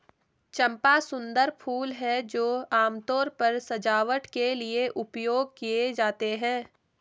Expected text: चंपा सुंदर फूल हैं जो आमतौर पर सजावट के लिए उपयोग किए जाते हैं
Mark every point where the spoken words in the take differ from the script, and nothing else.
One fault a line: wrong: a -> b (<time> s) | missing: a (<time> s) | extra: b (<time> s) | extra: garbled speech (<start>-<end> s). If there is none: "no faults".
no faults